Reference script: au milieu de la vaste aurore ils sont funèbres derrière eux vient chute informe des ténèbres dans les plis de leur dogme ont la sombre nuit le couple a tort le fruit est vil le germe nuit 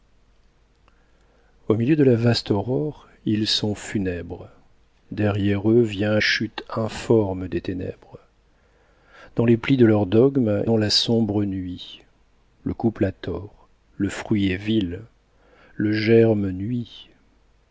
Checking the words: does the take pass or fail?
pass